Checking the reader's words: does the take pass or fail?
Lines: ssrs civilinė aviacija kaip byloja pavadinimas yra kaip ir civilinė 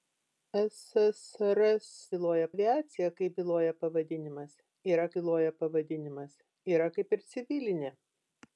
fail